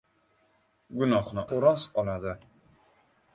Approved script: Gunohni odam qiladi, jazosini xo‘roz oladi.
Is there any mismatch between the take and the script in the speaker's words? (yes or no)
yes